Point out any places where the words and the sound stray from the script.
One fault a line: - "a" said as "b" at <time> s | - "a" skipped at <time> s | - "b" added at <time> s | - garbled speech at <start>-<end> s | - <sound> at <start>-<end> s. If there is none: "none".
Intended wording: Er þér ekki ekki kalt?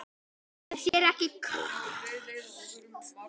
- dropout at 0.9-0.9 s
- "ekki" skipped at 1.3 s